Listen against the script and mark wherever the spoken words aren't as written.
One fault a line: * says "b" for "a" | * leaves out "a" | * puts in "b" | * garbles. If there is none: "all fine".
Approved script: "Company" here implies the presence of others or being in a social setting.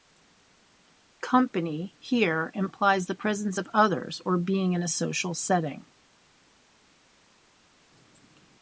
all fine